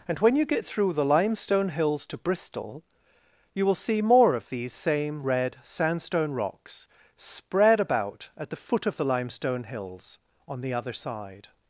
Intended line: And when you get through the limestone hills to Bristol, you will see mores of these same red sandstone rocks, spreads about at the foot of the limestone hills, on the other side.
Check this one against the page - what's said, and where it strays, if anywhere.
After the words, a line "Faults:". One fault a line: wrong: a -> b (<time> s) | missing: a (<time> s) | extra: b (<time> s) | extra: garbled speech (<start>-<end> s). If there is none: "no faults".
And when you get through the limestone hills to Bristol, you will see more of these same red sandstone rocks, spread about at the foot of the limestone hills, on the other side.
Faults:
wrong: mores -> more (4.0 s)
wrong: spreads -> spread (7.2 s)